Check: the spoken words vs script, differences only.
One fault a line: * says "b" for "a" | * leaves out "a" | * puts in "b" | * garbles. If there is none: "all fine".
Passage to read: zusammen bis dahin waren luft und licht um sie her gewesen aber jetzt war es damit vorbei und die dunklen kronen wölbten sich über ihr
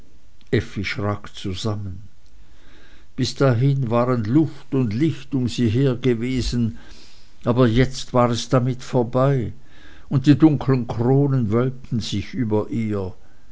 all fine